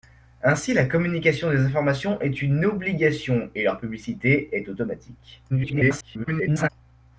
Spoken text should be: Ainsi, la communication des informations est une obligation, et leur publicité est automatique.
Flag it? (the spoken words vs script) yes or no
yes